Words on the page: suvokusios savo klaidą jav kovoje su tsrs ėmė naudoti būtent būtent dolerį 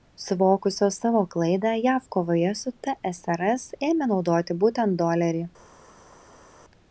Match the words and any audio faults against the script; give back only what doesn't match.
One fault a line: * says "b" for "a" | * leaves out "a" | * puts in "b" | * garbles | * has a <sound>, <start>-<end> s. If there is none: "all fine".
* leaves out "būtent"